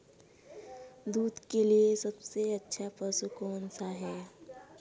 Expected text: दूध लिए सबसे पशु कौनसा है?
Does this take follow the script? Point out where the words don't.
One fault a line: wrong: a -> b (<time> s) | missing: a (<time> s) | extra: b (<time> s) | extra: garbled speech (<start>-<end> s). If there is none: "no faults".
extra: के (1.5 s)
extra: अच्छा (2.5 s)